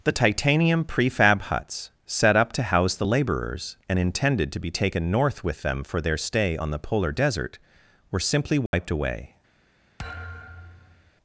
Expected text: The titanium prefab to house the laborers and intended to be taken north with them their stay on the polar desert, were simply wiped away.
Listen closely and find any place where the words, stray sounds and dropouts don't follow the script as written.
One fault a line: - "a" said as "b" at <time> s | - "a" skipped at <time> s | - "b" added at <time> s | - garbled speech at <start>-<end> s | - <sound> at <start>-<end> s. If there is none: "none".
- "huts set up" added at 1.4 s
- "for" added at 5.8 s
- dropout at 8.7-8.7 s
- thud at 10.0-11.1 s